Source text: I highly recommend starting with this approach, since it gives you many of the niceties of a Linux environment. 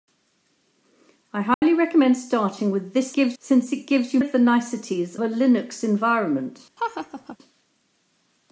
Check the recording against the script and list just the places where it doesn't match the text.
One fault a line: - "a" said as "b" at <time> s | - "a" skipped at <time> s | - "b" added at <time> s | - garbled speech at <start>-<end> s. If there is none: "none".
- "approach" said as "gives" at 3.1 s
- "many" skipped at 4.2 s
- "of" skipped at 5.2 s